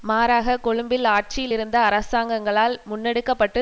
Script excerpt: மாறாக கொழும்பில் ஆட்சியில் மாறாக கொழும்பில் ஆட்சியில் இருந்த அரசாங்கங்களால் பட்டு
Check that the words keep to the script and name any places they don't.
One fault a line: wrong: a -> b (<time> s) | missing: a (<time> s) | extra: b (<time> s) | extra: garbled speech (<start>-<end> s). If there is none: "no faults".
missing: மாறாக கொழும்பில் ஆட்சியில் (1.5 s)
extra: முன்னெடுக்க (2.8 s)